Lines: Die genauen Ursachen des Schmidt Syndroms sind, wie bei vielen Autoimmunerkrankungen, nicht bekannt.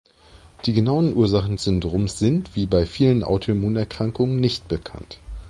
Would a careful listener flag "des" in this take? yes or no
yes